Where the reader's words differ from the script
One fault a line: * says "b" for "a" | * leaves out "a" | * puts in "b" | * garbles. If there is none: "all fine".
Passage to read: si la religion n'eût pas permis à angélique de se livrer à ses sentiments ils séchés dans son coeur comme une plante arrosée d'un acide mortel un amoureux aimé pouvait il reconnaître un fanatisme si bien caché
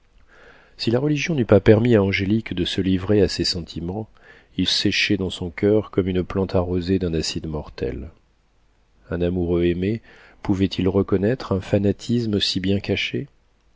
all fine